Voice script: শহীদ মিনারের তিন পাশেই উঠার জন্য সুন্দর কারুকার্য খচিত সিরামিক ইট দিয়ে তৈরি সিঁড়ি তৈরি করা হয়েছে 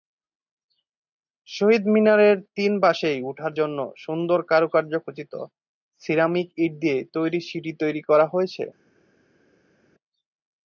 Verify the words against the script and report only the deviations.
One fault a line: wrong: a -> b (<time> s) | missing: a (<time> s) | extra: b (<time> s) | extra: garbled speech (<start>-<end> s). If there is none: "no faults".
no faults